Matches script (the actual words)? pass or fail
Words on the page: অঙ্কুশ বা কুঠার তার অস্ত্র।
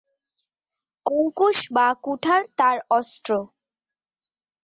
pass